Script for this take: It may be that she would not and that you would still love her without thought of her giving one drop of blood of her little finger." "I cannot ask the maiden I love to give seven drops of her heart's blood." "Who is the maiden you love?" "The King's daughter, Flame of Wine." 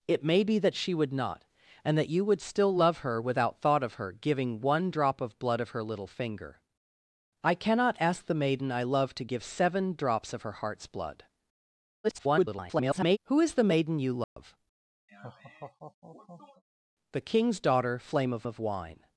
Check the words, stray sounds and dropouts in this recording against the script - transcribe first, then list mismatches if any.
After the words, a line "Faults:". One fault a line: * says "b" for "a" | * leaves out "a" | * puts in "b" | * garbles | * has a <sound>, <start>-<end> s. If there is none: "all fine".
It may be that she would not and that you would still love her without thought of her giving one drop of blood of her little finger." "I cannot ask the maiden I love to give seven drops of her heart's blood." [garbled] "Who is the maiden you love?" "The King's daughter, Flame of of Wine."
Faults:
* garbles
* has a dropout, 14.2-14.4 s
* has a laugh, 15.1-16.6 s
* puts in "of"